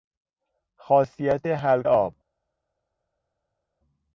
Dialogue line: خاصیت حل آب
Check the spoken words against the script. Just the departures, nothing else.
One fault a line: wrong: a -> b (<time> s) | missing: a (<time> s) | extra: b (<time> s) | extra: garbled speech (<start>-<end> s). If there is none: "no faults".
no faults